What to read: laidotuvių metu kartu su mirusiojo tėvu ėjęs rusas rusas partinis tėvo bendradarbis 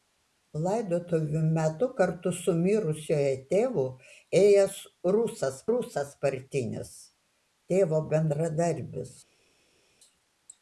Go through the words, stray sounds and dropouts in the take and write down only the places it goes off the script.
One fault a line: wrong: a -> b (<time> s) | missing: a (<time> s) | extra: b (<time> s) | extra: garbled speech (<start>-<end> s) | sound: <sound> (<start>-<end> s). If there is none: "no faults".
no faults